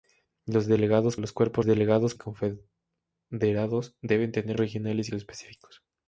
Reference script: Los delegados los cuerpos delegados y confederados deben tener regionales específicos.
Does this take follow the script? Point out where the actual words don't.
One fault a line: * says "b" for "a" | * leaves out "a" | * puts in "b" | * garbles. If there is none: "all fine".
all fine